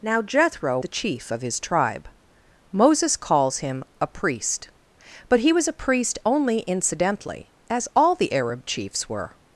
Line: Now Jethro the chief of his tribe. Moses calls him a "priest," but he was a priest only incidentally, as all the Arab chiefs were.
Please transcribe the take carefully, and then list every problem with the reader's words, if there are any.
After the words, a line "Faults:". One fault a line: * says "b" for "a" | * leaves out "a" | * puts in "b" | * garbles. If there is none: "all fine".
Now Jethro the chief of his tribe. Moses calls him a "priest," but he was a priest only incidentally, as all the Arab chiefs were.
Faults:
all fine